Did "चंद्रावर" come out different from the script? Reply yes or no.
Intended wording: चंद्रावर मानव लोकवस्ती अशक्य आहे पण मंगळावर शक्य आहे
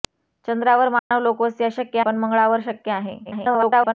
no